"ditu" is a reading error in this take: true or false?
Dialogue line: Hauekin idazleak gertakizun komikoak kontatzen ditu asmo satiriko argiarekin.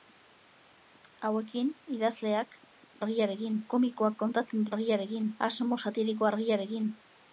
true